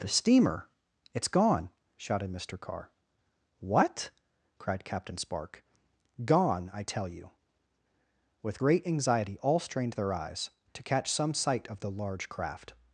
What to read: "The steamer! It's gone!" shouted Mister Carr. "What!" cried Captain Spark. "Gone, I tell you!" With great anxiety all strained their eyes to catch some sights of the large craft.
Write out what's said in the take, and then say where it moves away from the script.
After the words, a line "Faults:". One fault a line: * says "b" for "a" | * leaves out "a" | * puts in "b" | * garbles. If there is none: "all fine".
"The steamer! It's gone!" shouted Mister Carr. "What!" cried Captain Spark. "Gone, I tell you!" With great anxiety all strained their eyes to catch some sight of the large craft.
Faults:
* says "sight" for "sights"